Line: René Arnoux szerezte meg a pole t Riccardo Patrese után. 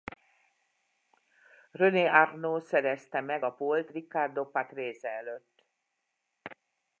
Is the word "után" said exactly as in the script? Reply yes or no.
no